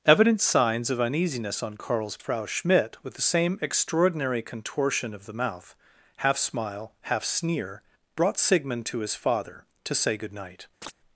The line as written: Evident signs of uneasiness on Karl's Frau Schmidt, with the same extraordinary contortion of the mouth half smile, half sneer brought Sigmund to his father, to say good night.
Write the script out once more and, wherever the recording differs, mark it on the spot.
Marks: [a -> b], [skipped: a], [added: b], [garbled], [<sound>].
Evident signs of uneasiness on Karl's Frau Schmidt, with the same extraordinary contortion of the mouth half smile, half sneer brought Sigmund to his father, to say good night. [chirp]